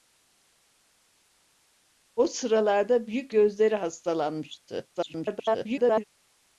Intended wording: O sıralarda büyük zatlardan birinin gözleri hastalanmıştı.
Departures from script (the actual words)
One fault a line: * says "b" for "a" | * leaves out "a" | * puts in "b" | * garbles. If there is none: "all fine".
* leaves out "zatlardan birinin"
* garbles